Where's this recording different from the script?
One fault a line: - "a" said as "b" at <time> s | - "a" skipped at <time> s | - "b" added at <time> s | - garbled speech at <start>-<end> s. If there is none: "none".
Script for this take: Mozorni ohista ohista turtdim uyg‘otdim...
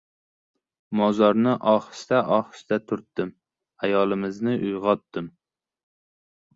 - "ayolimizni" added at 3.9 s